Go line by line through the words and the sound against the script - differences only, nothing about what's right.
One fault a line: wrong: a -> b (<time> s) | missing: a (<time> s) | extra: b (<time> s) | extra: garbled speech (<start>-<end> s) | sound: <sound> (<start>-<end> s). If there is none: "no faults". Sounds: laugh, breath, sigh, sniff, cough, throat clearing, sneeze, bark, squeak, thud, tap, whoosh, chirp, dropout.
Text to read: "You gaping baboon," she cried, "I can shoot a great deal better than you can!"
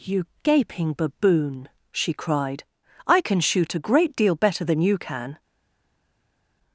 no faults